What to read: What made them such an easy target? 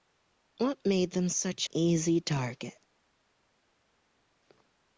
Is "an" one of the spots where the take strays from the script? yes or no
yes